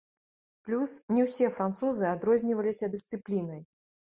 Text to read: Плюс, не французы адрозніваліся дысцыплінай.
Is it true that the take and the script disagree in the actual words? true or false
true